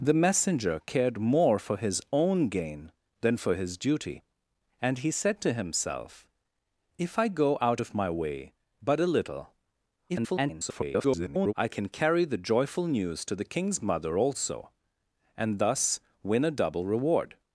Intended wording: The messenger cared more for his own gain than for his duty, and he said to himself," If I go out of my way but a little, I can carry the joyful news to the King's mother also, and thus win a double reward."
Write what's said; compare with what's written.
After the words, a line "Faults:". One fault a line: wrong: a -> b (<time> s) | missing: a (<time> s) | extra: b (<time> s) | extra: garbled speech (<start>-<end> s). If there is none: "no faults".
The messenger cared more for his own gain than for his duty, and he said to himself," If I go out of my way but a little, [garbled] I can carry the joyful news to the King's mother also, and thus win a double reward."
Faults:
extra: garbled speech (10.1-11.5 s)